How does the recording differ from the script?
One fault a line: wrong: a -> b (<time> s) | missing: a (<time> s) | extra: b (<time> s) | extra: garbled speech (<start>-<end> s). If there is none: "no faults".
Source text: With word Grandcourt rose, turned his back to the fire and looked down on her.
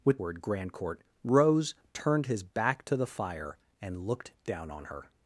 no faults